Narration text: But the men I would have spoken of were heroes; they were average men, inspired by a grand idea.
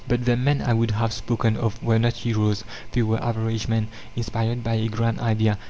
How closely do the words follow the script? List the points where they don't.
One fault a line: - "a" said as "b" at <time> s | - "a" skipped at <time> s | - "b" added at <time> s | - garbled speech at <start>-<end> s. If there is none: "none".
- "not" added at 2.0 s